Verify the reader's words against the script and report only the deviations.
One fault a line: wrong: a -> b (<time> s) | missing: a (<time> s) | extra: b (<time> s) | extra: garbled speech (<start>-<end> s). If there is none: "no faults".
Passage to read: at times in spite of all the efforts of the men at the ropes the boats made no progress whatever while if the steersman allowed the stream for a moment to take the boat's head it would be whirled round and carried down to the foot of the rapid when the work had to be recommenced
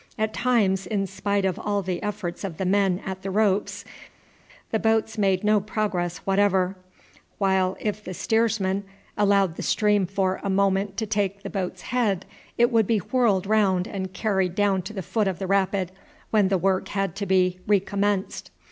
no faults